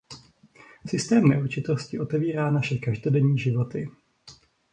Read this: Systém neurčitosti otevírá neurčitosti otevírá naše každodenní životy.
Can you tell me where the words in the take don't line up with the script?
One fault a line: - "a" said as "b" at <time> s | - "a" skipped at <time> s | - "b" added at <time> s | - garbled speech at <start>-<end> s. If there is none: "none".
- "neurčitosti otevírá" skipped at 2.5 s